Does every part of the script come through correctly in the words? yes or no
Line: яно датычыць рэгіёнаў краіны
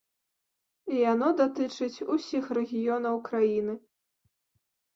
no